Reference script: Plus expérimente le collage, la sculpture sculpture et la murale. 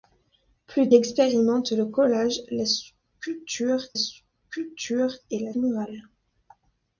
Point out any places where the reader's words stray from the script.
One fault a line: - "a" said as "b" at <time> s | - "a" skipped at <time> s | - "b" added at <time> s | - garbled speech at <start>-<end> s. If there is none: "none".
none